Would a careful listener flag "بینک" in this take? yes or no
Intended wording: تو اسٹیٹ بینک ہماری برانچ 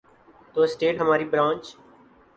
yes